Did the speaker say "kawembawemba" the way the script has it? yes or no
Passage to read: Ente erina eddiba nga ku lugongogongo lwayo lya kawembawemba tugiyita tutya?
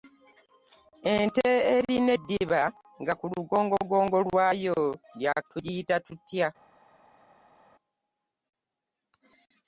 no